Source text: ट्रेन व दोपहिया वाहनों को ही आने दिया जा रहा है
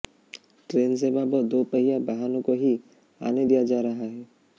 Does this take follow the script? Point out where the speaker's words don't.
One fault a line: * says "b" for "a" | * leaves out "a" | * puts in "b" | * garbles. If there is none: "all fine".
* puts in "सेवा"